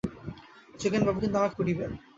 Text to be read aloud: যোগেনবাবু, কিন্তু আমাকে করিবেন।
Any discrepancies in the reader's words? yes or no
no